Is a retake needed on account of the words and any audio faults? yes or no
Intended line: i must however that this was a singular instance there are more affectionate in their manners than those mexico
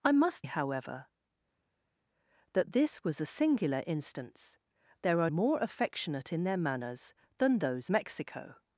no